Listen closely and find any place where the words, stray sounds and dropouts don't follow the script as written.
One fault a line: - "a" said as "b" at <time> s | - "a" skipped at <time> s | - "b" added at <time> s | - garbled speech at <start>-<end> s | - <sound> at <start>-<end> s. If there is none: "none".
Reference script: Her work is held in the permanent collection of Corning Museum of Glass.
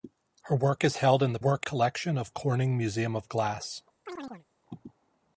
- "permanent" said as "work" at 1.4 s
- chirp at 4.1-4.5 s